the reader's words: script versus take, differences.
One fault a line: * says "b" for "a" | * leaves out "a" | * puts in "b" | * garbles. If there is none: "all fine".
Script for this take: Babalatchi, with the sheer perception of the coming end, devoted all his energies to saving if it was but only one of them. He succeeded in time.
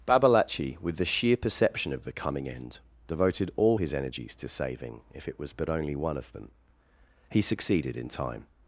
all fine